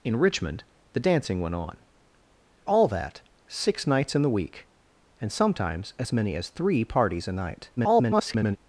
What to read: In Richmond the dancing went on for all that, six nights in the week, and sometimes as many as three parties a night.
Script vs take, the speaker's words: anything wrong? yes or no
yes